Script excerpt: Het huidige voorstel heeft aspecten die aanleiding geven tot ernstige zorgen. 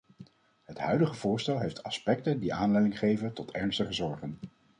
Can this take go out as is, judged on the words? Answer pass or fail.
pass